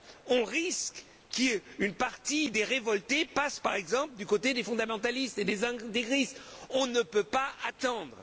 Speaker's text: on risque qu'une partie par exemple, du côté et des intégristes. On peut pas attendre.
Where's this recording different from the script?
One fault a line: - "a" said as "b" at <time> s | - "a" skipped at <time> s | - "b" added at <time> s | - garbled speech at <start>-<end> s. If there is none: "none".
- "des révoltés passe" added at 2.5 s
- "des fondamentalistes" added at 4.5 s
- "ne" added at 6.9 s